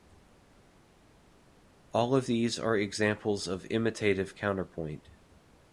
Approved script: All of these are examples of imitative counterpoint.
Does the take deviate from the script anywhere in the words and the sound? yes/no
no